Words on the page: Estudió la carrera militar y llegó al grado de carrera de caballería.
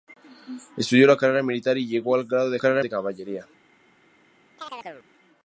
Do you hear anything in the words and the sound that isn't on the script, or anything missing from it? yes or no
yes